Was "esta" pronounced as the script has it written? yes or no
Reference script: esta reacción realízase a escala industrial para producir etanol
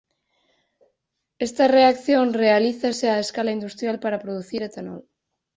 yes